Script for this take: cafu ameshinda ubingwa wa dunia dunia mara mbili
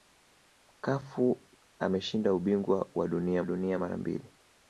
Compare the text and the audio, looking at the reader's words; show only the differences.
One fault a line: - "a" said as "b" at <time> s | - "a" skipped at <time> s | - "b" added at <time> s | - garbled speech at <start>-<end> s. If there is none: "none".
none